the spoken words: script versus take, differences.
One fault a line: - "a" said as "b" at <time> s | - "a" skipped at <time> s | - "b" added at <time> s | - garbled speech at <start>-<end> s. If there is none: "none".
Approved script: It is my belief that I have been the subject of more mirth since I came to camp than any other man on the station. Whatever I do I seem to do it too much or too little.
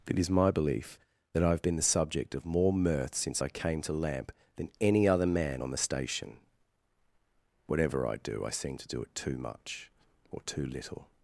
- "camp" said as "lamp" at 3.9 s